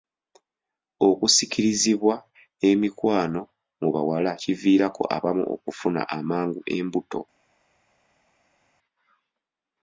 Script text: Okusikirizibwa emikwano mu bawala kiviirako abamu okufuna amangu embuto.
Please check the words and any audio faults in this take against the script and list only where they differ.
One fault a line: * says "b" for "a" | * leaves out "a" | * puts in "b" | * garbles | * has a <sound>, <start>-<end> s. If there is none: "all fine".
all fine